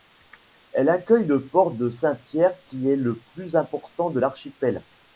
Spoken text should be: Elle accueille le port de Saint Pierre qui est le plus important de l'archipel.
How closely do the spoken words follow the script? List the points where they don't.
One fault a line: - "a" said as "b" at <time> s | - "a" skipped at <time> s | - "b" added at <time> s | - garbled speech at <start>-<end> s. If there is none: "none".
none